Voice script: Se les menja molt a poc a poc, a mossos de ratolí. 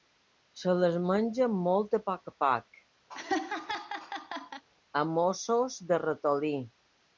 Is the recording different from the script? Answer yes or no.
no